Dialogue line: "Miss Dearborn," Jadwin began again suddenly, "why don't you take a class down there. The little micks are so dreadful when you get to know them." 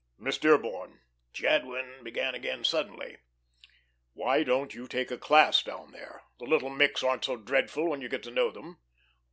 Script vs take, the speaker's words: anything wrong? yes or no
yes